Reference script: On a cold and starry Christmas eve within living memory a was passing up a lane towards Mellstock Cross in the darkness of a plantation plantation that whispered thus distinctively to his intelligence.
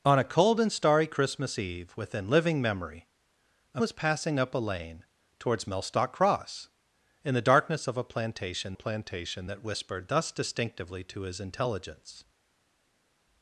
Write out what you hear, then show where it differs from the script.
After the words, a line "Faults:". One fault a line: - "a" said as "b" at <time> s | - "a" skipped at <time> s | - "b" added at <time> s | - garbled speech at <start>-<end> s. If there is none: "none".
On a cold and starry Christmas eve within living memory a was passing up a lane towards Mellstock Cross in the darkness of a plantation plantation that whispered thus distinctively to his intelligence.
Faults:
none